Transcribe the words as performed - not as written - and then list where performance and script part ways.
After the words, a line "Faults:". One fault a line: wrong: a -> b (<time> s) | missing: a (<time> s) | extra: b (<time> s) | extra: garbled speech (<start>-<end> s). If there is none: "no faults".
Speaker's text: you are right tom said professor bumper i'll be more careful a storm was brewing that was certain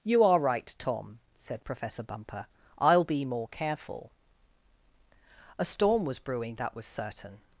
you are right tom said professor bumper i'll be more careful a storm was brewing that was certain
Faults:
no faults